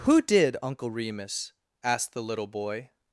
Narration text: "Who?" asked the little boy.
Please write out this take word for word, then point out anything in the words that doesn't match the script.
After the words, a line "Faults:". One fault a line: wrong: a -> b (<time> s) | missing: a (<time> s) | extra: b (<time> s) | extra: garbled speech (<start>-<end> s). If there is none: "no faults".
"Who did, Uncle Remus?" asked the little boy.
Faults:
extra: did Uncle Remus (0.2 s)